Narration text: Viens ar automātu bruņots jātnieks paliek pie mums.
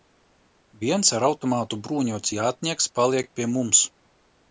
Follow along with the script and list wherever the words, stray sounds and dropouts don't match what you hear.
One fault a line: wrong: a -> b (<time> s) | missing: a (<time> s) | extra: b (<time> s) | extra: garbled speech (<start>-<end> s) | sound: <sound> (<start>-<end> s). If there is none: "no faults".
no faults